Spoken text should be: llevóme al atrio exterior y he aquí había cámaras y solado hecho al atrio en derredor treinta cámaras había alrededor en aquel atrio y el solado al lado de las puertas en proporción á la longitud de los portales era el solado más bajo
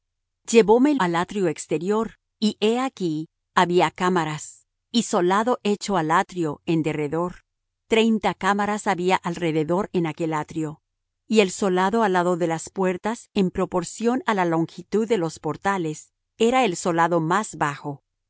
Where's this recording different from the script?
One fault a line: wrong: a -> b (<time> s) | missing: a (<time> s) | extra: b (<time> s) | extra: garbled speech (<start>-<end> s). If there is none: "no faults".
no faults